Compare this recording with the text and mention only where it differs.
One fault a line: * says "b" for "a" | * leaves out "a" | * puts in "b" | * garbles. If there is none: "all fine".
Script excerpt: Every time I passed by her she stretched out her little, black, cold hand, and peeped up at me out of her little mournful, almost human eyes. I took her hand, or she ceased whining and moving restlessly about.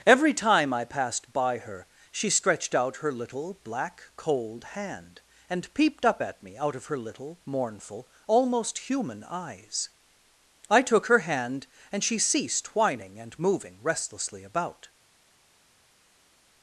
* says "and" for "or"